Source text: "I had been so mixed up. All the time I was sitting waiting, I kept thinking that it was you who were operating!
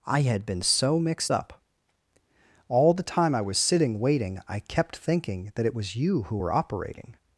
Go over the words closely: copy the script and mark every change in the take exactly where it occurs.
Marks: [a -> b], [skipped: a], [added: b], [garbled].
"I had been so mixed up. All the time I was sitting waiting, I kept thinking that it was you who were operating!